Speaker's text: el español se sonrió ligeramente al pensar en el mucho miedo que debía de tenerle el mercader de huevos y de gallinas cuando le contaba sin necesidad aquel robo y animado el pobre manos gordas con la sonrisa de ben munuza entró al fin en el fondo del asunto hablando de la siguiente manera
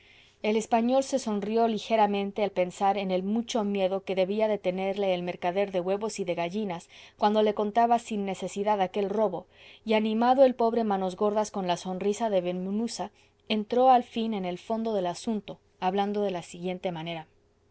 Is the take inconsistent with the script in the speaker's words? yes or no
no